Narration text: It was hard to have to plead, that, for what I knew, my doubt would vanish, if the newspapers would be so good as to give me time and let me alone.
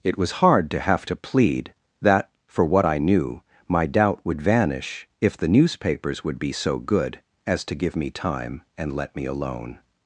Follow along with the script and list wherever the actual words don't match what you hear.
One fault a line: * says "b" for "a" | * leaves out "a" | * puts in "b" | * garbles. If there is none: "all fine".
all fine